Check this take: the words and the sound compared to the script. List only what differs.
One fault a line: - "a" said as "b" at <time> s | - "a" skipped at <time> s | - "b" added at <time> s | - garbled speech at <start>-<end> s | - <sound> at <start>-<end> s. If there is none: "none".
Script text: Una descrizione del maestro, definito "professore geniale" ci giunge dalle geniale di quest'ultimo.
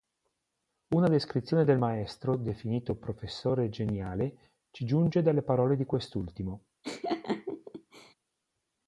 - "geniale" said as "parole" at 5.4 s
- laugh at 6.8-8.1 s